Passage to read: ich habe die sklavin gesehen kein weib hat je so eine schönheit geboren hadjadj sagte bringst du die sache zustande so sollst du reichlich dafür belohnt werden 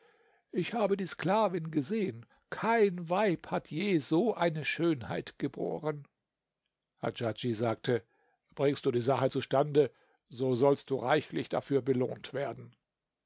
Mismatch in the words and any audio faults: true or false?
false